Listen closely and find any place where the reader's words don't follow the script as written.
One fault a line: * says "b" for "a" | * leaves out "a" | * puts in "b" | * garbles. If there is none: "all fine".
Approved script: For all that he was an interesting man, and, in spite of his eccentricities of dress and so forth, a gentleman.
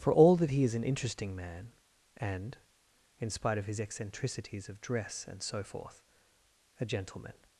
* says "is" for "was"